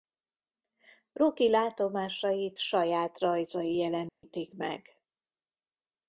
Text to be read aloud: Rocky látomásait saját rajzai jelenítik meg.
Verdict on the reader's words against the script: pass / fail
pass